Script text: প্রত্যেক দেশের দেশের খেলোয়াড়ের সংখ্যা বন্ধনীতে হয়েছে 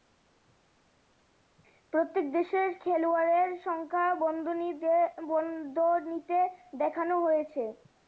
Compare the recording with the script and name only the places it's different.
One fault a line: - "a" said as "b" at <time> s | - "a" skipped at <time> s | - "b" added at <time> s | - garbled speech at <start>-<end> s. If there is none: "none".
- "দেশের" skipped at 2.7 s
- "দেখানো" added at 6.8 s